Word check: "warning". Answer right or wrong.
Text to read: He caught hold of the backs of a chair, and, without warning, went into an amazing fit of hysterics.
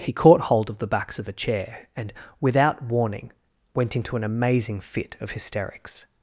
right